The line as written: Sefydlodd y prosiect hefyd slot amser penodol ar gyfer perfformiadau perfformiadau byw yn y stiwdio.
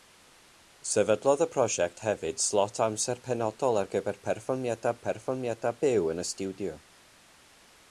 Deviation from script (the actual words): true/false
false